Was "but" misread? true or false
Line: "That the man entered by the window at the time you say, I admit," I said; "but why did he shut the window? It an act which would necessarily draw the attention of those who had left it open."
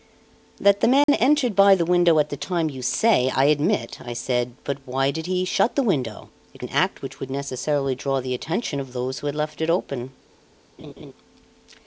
false